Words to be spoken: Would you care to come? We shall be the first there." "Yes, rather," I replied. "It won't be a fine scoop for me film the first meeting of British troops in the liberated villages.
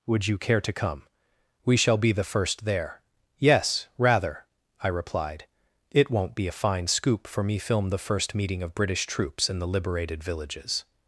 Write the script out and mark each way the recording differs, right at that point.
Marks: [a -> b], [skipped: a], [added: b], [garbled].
Would you care to come? We shall be the first there." "Yes, rather," I replied. "It won't be a fine scoop for me film the first meeting of British troops in the liberated villages.